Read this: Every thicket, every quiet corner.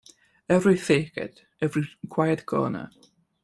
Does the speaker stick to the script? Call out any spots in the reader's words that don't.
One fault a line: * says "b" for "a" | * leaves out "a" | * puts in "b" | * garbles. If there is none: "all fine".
all fine